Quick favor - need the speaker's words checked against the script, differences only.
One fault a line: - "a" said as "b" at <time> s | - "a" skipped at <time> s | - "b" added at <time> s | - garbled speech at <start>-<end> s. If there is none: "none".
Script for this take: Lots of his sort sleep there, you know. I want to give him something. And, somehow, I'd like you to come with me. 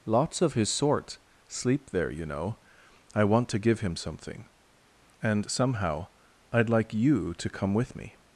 none